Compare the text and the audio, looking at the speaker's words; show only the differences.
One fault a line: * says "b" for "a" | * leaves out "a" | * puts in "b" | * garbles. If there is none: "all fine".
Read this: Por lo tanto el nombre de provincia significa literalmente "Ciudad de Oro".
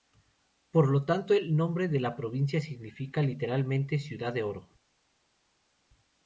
* puts in "la"